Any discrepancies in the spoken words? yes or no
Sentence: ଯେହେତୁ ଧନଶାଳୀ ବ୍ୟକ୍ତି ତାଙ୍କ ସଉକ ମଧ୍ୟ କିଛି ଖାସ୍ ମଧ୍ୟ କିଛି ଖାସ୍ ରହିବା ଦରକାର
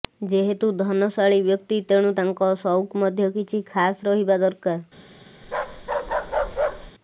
yes